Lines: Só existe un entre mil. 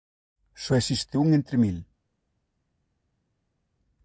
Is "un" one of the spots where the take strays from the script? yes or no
no